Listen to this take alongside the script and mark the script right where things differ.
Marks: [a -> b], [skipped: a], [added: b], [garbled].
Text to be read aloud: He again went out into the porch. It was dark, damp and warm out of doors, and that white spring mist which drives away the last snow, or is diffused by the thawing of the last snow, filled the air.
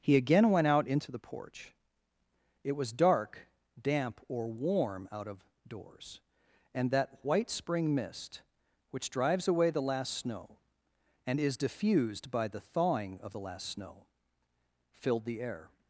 He again went out into the porch. It was dark, damp [and -> or] warm out of doors, and that white spring mist which drives away the last snow, [or -> and] is diffused by the thawing of the last snow, filled the air.